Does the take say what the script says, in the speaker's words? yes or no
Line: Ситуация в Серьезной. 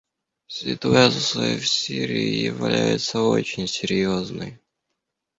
no